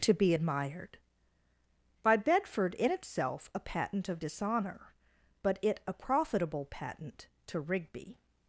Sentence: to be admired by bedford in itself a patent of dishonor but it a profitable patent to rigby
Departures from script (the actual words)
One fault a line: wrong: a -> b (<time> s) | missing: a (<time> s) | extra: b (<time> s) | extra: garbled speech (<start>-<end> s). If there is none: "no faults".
no faults